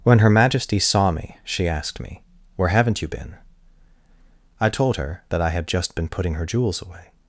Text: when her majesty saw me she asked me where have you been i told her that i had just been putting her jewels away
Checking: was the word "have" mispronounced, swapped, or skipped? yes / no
yes